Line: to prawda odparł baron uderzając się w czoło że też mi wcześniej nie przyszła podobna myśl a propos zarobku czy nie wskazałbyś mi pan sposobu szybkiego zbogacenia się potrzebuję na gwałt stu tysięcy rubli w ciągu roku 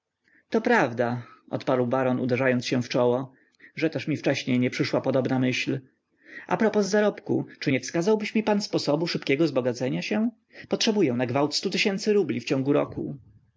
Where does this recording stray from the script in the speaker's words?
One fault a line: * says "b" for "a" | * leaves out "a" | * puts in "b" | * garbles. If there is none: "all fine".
all fine